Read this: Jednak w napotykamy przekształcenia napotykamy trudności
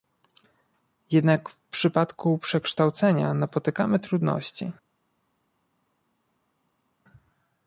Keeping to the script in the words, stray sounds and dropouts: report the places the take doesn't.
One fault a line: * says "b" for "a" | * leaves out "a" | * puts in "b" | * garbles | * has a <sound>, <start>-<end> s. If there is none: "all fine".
* says "przypadku" for "napotykamy"